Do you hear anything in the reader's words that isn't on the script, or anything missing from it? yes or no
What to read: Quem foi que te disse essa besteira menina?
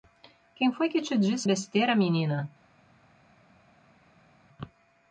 yes